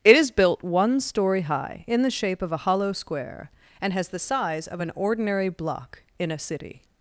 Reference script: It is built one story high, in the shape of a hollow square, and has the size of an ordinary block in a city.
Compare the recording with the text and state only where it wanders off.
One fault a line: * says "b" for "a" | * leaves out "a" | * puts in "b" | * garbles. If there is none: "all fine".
all fine